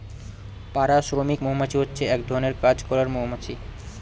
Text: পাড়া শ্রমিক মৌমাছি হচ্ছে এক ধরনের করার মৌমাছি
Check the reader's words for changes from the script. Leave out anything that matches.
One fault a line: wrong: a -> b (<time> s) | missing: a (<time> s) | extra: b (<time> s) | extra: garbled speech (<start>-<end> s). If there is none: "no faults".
extra: কাজ (2.6 s)